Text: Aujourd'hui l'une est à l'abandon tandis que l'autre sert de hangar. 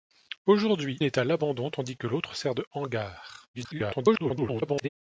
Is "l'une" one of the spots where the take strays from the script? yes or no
yes